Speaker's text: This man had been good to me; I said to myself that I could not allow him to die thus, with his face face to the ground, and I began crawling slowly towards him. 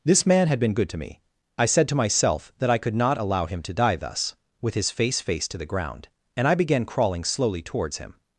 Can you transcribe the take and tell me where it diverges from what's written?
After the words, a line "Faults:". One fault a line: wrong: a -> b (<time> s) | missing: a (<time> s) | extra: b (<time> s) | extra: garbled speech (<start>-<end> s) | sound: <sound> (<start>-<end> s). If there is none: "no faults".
This man had been good to me; I said to myself that I could not allow him to die thus, with his face face to the ground, and I began crawling slowly towards him.
Faults:
no faults